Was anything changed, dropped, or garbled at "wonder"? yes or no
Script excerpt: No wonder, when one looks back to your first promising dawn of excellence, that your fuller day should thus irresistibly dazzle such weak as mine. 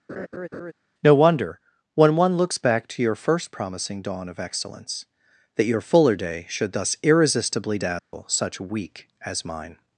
no